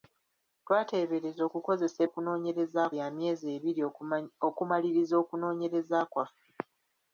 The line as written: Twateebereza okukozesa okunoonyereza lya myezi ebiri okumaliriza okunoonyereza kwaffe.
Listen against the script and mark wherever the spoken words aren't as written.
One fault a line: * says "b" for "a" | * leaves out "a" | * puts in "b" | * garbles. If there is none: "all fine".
all fine